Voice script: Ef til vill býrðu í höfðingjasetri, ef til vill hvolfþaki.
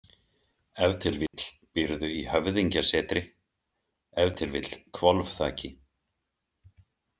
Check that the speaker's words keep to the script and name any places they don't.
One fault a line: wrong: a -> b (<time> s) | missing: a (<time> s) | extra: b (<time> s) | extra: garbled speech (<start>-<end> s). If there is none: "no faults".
no faults